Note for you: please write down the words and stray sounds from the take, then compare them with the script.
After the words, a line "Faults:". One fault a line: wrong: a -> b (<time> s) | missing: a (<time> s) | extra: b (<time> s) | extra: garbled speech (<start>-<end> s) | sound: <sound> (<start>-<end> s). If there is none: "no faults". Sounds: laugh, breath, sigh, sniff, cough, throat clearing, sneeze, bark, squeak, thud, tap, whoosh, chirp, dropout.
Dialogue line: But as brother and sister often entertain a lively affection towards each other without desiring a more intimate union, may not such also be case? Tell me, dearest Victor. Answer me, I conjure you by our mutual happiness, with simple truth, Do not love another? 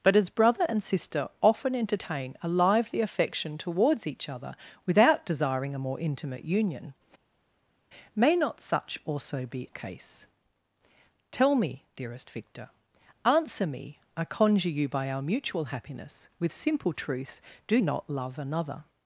But as brother and sister often entertain a lively affection towards each other without desiring a more intimate union, may not such also be case? Tell me, dearest Victor. Answer me, I conjure you by our mutual happiness, with simple truth, Do not love another?
Faults:
no faults